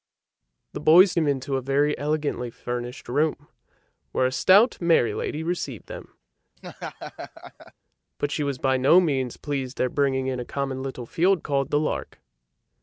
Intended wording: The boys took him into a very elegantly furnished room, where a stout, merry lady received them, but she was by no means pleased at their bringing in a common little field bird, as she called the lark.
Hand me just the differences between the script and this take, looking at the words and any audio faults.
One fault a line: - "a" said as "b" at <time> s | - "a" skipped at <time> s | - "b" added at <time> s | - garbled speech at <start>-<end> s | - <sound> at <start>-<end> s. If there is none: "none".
- "took" skipped at 1.1 s
- laugh at 6.6-7.7 s
- "at" skipped at 9.8 s
- "bird as she" skipped at 11.4 s